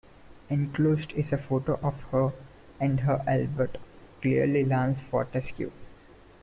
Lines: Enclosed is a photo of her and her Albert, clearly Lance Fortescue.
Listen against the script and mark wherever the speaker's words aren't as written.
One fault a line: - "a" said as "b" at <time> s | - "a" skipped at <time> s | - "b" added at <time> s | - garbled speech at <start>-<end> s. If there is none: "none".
none